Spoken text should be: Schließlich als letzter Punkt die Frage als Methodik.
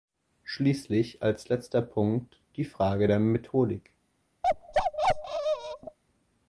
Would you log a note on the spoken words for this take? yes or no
yes